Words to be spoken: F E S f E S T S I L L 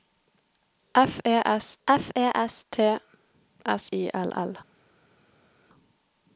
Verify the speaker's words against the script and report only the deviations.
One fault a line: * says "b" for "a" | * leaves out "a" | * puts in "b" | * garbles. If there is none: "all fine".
all fine